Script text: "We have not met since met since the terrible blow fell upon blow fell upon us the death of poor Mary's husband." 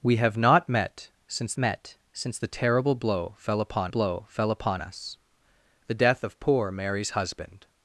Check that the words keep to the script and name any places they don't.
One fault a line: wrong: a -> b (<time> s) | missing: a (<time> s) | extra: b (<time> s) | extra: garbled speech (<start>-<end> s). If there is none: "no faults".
no faults